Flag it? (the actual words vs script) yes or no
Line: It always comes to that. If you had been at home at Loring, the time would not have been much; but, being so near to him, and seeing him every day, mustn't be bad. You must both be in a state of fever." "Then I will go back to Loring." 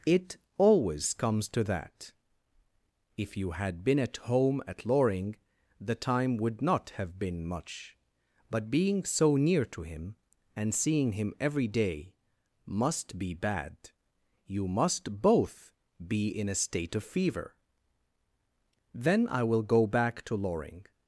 yes